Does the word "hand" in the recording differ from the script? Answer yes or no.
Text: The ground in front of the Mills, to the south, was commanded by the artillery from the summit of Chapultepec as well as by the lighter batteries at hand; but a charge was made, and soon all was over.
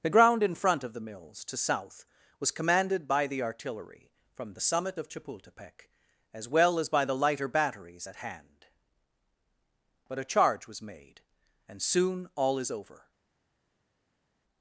no